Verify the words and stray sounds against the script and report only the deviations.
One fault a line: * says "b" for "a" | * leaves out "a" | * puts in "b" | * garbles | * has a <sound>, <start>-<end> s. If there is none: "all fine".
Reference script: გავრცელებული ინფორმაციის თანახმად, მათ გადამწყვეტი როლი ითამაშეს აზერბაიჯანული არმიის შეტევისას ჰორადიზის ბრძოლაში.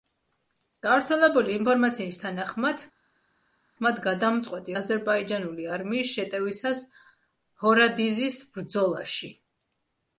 * leaves out "როლი ითამაშეს"